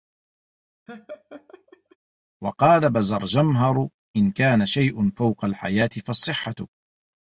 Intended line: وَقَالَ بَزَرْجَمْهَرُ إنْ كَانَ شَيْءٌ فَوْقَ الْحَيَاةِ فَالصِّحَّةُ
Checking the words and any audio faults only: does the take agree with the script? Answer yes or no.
no